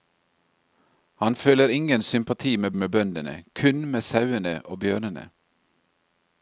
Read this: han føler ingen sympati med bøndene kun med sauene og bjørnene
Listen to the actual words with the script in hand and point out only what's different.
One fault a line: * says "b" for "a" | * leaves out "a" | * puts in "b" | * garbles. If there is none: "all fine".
* puts in "med"